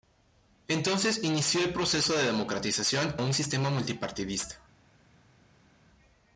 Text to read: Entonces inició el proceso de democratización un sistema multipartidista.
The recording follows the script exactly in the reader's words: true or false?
true